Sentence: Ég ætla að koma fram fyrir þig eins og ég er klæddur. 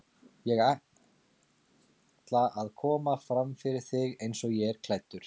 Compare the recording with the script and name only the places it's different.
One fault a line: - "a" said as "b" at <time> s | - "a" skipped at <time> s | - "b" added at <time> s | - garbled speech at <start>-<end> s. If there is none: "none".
none